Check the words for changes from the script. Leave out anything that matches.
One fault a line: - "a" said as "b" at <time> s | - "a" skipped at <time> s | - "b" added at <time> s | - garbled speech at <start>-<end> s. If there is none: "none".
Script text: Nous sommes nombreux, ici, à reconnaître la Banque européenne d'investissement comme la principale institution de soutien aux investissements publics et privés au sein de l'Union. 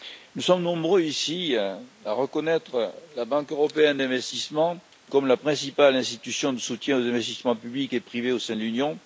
none